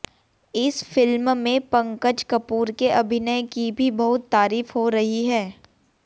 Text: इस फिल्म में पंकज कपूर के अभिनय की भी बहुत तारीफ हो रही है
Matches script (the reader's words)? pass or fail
pass